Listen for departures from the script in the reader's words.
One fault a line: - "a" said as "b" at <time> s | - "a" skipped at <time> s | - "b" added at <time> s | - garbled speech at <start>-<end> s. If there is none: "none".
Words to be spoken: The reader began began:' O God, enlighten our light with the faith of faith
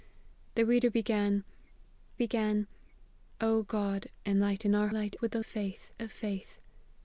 none